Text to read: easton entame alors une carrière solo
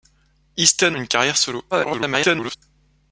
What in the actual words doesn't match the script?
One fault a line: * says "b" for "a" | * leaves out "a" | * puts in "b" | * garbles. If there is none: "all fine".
* leaves out "entame alors"
* garbles